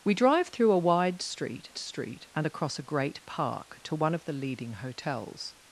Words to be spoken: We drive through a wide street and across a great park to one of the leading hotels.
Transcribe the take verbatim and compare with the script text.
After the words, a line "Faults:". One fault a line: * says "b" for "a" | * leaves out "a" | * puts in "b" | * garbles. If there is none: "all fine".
We drive through a wide street street and across a great park to one of the leading hotels.
Faults:
* puts in "street"